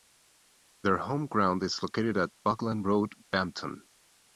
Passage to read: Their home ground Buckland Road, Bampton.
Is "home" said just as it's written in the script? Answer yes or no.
yes